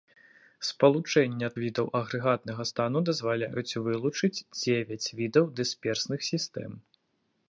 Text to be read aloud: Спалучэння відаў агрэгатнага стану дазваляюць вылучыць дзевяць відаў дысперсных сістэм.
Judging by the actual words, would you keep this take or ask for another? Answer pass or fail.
pass